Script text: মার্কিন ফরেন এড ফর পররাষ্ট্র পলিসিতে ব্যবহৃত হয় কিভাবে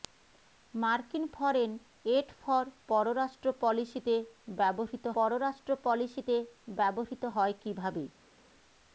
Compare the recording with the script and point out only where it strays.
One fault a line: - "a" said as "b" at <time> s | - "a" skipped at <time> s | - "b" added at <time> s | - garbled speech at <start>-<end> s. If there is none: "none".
- "পররাষ্ট্র পলিসিতে ব্যবহৃত" added at 5.1 s